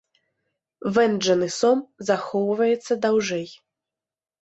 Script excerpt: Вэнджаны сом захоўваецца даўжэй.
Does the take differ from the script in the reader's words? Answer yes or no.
no